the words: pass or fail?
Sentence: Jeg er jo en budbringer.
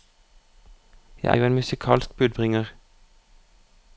fail